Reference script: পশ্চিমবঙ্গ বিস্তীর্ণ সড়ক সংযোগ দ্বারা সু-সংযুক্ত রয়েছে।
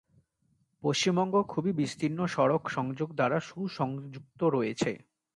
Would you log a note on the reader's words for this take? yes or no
yes